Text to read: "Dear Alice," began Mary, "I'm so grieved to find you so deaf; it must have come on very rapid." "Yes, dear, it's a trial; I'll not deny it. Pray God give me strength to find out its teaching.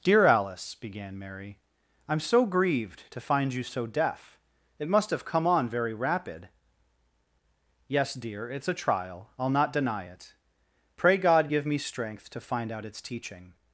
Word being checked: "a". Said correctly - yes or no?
yes